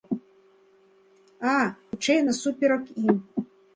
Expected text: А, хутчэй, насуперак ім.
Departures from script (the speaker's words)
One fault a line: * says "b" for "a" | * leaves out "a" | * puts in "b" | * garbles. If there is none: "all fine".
all fine